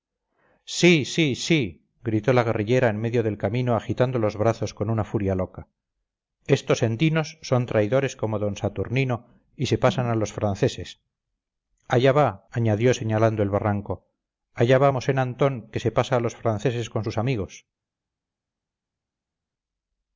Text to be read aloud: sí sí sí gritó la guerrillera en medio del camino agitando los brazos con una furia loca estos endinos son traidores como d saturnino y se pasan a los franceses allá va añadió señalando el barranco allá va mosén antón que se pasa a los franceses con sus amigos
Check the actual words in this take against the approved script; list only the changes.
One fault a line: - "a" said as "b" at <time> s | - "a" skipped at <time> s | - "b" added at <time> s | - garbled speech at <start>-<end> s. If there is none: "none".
none